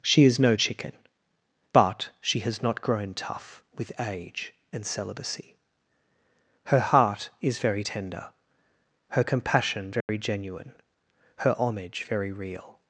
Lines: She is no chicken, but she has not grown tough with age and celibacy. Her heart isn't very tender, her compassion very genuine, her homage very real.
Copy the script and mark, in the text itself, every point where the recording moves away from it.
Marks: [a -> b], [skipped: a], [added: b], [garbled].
She is no chicken, but she has not grown tough with age and celibacy. Her heart [isn't -> is] very tender, her compassion very genuine, her homage very real.